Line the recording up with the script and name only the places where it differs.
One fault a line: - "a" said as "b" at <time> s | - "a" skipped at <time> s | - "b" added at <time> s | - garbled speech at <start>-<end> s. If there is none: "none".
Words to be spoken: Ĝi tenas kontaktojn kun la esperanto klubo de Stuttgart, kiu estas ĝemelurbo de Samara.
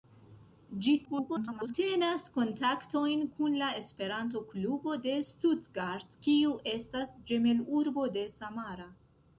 - garbled speech at 1.0-1.7 s